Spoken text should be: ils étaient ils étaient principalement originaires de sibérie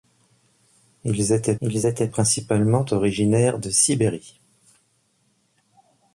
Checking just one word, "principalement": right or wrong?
right